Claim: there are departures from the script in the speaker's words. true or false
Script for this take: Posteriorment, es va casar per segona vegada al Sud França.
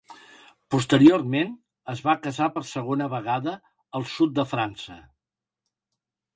true